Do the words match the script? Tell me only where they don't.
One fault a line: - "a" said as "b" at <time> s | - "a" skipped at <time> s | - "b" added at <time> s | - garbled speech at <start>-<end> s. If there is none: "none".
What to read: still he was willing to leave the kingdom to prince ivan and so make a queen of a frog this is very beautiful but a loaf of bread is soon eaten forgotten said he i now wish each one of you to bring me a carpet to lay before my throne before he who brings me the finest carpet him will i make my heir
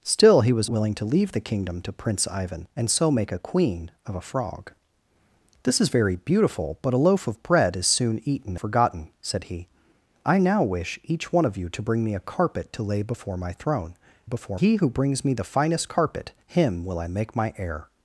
none